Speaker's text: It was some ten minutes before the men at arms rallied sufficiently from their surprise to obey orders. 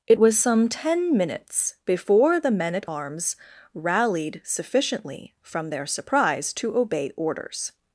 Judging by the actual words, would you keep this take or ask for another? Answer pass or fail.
pass